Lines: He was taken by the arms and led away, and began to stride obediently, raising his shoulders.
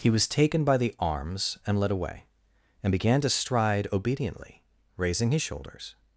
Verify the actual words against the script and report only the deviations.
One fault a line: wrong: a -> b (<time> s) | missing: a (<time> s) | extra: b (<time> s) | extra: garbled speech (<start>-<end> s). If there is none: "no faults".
no faults